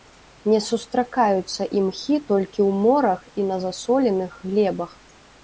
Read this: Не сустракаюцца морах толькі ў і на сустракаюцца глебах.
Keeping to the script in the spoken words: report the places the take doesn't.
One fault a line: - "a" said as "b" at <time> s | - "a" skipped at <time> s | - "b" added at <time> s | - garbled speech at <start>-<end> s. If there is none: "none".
- "морах" said as "імхі" at 1.8 s
- "морах" added at 2.8 s
- "сустракаюцца" said as "засоленых" at 3.6 s